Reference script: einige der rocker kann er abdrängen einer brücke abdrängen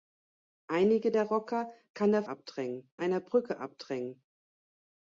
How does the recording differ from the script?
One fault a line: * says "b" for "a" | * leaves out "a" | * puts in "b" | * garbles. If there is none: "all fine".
all fine